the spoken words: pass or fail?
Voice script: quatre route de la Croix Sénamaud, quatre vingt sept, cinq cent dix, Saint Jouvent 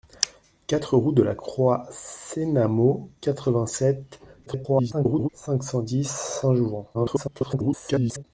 fail